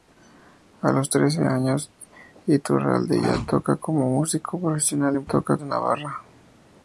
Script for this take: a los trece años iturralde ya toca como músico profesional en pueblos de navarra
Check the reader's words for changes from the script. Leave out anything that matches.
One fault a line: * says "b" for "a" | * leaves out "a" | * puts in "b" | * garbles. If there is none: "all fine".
* says "toca" for "pueblos"